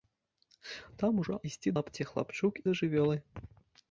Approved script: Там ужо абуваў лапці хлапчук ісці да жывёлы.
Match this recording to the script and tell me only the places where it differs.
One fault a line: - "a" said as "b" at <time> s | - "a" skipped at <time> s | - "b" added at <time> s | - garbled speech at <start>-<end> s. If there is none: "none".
- "абуваў" said as "ісці" at 1.5 s
- "ісці" skipped at 2.5 s